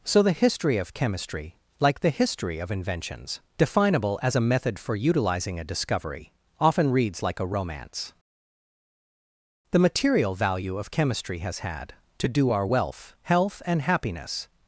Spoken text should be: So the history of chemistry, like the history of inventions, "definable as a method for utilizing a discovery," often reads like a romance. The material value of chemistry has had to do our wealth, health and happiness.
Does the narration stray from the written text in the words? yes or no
no